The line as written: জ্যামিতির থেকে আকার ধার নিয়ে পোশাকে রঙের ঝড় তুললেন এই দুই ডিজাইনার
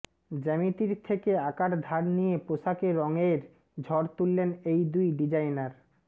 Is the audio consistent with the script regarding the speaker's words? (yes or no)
yes